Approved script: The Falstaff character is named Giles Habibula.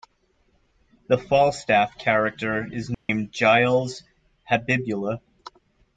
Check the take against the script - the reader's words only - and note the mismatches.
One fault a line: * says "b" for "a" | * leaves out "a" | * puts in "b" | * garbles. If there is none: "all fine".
all fine